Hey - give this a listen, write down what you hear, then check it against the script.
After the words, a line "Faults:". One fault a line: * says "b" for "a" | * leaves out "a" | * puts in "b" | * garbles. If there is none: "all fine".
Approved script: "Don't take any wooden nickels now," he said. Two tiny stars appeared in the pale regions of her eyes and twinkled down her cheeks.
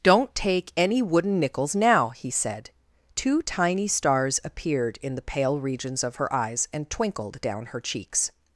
"Don't take any wooden nickels now," he said. Two tiny stars appeared in the pale regions of her eyes and twinkled down her cheeks.
Faults:
all fine